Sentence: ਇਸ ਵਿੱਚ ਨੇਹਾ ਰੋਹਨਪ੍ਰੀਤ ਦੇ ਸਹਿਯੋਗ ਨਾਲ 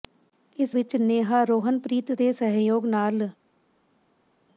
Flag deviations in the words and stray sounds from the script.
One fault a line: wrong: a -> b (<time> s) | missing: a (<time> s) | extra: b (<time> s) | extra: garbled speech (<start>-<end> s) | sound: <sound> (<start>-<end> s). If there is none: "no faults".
no faults